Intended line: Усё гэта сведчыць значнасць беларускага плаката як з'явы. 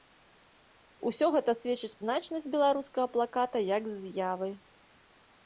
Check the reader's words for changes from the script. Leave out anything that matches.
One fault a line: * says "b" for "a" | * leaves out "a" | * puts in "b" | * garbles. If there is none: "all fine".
all fine